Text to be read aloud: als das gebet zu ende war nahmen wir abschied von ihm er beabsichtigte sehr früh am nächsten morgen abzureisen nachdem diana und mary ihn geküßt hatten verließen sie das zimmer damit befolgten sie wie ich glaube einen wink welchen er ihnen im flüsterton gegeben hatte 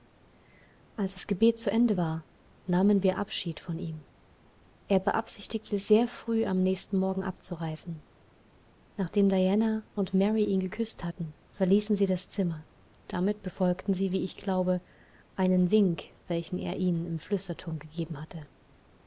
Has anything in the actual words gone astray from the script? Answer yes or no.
no